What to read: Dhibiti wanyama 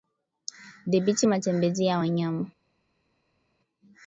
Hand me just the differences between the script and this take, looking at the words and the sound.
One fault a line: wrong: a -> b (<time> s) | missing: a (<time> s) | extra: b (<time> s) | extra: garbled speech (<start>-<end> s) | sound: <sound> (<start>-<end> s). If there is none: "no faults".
extra: matembezi ya (1.2 s)